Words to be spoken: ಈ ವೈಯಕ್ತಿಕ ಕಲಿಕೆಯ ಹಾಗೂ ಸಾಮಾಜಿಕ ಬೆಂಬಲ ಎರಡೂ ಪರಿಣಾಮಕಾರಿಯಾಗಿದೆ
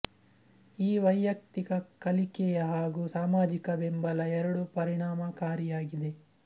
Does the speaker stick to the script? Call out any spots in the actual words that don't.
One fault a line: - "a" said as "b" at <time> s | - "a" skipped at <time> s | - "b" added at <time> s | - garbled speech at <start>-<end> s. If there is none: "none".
none